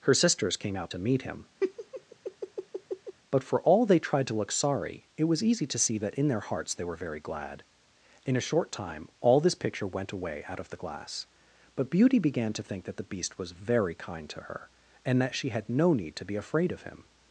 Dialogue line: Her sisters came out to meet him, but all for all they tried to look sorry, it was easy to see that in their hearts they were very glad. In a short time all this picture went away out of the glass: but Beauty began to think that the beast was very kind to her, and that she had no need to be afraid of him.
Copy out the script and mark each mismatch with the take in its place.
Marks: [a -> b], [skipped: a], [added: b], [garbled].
Her sisters came out to meet him, but [skipped: all] for all they tried to look sorry, it was easy to see that in their hearts they were very glad. In a short time all this picture went away out of the glass: but Beauty began to think that the beast was very kind to her, and that she had no need to be afraid of him.